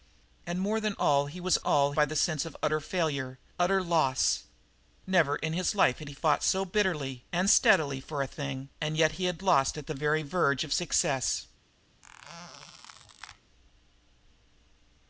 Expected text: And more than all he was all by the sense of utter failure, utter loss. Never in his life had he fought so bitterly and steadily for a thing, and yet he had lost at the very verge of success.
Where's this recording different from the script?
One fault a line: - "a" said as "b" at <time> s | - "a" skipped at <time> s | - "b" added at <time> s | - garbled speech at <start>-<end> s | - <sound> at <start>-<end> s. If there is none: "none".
- squeak at 12.0-13.4 s